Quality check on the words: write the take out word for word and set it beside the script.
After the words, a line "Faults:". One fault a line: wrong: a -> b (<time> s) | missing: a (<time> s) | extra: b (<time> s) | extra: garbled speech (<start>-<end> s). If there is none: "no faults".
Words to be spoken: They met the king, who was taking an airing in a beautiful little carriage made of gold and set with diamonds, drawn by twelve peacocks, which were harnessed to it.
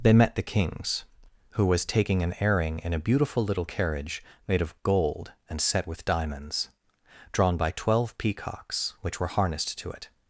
They met the kings, who was taking an airing in a beautiful little carriage made of gold and set with diamonds, drawn by twelve peacocks, which were harnessed to it.
Faults:
wrong: king -> kings (0.4 s)